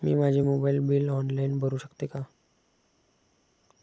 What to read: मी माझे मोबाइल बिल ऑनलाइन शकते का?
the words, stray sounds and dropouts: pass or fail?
fail